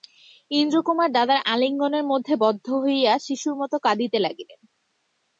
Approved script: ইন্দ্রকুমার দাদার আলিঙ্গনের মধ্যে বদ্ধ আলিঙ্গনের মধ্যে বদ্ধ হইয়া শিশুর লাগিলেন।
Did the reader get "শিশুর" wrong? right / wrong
wrong